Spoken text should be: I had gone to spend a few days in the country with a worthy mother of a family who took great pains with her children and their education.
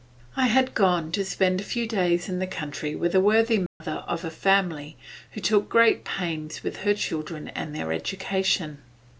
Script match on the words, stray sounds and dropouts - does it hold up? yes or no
no